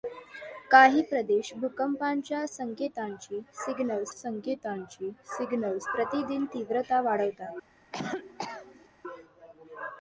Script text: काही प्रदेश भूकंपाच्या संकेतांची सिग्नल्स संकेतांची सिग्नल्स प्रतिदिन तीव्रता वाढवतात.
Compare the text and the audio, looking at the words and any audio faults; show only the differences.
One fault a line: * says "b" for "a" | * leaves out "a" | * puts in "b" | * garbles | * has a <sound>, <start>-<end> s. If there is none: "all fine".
* has a cough, 7.9-8.9 s